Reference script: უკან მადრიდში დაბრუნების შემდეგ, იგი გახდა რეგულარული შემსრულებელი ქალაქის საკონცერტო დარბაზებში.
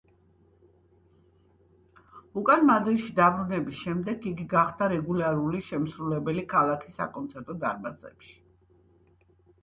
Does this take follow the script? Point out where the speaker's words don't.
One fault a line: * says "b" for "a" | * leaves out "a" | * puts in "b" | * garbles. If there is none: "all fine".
all fine